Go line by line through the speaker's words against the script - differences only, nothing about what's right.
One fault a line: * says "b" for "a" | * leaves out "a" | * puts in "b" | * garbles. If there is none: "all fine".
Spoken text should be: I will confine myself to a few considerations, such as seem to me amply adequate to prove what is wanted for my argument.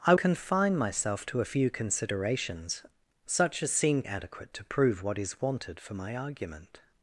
* leaves out "will"
* leaves out "to me amply"